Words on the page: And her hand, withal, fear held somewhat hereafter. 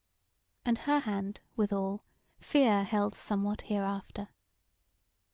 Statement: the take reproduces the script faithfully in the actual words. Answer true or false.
true